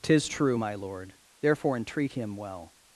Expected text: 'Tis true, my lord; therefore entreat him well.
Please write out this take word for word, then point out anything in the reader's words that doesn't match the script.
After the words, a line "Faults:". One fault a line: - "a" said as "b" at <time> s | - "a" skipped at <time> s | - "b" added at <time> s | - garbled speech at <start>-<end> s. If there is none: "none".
'Tis true, my lord; therefore entreat him well.
Faults:
none